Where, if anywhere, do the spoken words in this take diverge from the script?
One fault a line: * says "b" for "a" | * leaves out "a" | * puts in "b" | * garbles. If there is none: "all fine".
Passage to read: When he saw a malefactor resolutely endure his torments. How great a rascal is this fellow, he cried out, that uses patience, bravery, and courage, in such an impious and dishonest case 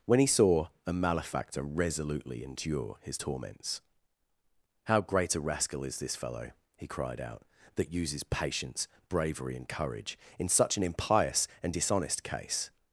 all fine